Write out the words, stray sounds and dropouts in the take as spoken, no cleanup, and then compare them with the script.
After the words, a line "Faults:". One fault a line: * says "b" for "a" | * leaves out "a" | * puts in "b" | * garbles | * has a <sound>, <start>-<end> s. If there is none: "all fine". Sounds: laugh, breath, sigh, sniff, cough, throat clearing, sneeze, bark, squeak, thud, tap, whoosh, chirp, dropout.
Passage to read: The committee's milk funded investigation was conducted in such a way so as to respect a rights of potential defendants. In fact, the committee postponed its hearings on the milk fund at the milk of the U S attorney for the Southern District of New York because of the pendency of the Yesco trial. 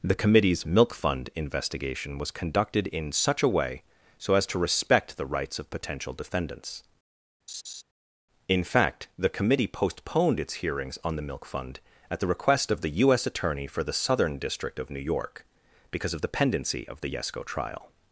The committee's milk fund investigation was conducted in such a way so as to respect the rights of potential defendants. In fact, the committee postponed its hearings on the milk fund at the request of the U S attorney for the Southern District of New York because of the pendency of the Yesco trial.
Faults:
* says "fund" for "funded"
* says "the" for "a"
* has a laugh, 7.5-7.8 s
* says "request" for "milk"